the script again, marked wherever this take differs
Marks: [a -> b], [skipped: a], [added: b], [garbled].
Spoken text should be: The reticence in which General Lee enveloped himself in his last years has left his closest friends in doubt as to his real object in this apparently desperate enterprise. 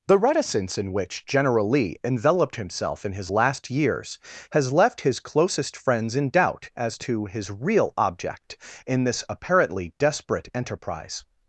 The reticence in which General Lee enveloped himself in his last years has left his closest friends in doubt as to his real object in this apparently desperate enterprise.